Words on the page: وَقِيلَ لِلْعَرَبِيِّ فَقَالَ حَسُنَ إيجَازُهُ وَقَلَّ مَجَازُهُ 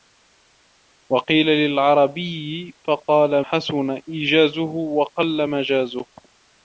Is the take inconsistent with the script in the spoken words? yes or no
no